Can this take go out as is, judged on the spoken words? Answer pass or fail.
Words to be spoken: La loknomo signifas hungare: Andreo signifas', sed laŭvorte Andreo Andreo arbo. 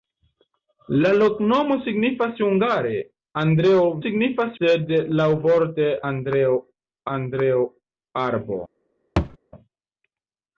pass